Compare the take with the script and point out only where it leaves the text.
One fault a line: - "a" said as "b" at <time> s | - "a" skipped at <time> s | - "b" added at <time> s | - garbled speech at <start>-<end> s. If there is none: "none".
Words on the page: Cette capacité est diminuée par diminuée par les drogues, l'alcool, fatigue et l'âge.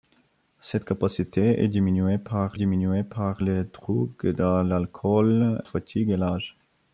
none